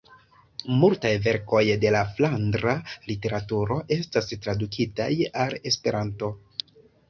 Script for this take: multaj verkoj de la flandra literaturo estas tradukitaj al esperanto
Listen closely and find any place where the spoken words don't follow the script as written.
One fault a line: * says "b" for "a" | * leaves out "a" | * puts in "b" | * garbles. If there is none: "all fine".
all fine